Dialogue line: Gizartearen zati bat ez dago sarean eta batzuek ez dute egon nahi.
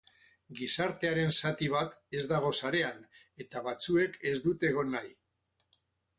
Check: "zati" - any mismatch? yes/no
no